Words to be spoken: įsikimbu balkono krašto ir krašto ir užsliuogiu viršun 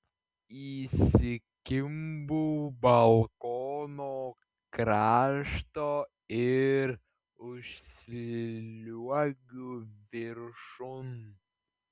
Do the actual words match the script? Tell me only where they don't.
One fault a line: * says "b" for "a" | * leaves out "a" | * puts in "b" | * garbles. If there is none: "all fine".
* leaves out "krašto ir"